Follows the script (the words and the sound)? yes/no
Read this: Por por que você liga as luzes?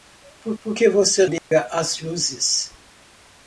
no